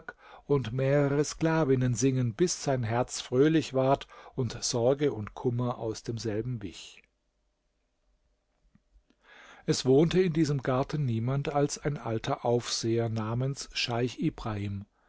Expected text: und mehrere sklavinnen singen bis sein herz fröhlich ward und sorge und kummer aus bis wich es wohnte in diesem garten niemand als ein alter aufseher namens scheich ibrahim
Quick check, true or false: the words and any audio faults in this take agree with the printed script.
false